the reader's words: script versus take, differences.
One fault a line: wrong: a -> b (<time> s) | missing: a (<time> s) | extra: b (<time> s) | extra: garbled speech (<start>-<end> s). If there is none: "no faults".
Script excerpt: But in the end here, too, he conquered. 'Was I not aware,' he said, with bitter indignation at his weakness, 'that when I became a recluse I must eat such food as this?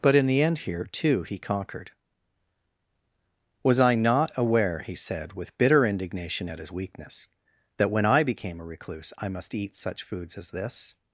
wrong: food -> foods (10.0 s)